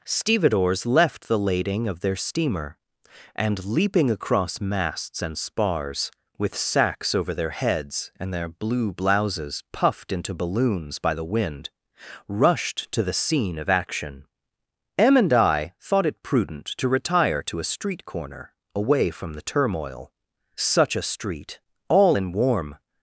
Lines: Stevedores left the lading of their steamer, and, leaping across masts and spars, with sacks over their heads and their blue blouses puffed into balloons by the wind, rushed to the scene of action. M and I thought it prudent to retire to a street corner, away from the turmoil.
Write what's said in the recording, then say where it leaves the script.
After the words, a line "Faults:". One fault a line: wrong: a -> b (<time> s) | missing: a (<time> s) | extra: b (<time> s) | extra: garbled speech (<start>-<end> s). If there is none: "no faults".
Stevedores left the lading of their steamer, and, leaping across masts and spars, with sacks over their heads and their blue blouses puffed into balloons by the wind, rushed to the scene of action. M and I thought it prudent to retire to a street corner, away from the turmoil. Such a street! all in warm
Faults:
extra: Such a street all in warm (20.6 s)